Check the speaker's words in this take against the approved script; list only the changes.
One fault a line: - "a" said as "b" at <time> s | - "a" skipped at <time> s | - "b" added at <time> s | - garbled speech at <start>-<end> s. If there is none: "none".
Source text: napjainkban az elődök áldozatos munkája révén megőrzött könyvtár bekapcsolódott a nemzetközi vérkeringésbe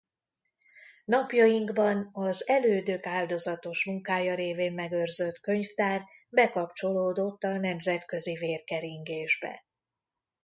none